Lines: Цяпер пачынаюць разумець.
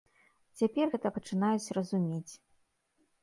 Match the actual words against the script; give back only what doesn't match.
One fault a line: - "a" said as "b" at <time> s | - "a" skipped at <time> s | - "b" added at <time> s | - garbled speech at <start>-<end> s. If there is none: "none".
- "гэта" added at 0.9 s